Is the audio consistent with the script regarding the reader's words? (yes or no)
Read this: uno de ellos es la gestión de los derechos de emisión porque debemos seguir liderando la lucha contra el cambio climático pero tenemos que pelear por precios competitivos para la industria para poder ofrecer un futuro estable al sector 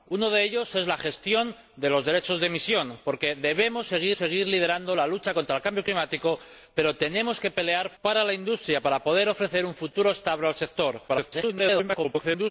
no